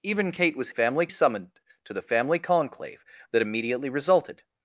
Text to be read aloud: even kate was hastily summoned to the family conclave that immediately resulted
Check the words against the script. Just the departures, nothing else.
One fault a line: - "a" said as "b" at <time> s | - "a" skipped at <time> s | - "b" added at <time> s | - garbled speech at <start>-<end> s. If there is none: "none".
- "hastily" said as "family" at 0.7 s